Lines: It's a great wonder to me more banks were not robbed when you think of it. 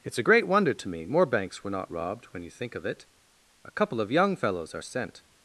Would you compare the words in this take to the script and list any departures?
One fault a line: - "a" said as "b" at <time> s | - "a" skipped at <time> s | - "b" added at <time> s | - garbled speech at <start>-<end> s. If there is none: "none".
- "A couple of young fellows are sent" added at 3.6 s